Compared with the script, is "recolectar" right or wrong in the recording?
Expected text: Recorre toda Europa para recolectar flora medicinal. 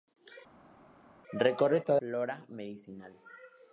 wrong